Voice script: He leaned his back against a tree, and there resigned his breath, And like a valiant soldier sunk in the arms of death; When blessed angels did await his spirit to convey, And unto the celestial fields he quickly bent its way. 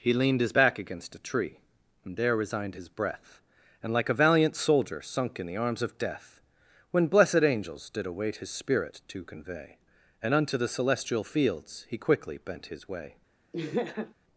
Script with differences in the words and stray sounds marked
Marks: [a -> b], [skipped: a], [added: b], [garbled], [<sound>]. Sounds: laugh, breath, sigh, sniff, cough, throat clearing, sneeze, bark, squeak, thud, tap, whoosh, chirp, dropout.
He leaned his back against a tree, and there resigned his breath, And like a valiant soldier sunk in the arms of death; When blessed angels did await his spirit to convey, And unto the celestial fields he quickly bent [its -> his] way. [laugh]